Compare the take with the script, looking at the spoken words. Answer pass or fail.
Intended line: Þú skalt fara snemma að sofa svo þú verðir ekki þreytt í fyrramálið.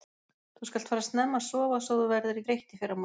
fail